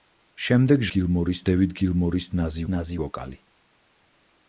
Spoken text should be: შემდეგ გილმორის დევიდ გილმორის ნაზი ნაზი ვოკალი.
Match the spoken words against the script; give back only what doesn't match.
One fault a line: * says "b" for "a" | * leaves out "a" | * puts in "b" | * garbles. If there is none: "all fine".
all fine